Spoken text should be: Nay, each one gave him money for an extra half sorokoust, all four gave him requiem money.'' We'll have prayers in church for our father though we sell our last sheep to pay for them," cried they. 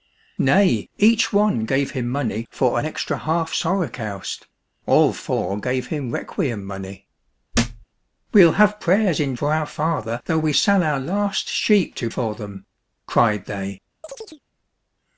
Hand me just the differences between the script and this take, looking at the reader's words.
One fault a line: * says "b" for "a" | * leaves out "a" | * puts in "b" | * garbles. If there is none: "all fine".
* leaves out "church"
* leaves out "pay"